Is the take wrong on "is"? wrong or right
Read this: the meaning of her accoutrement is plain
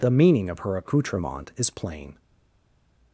right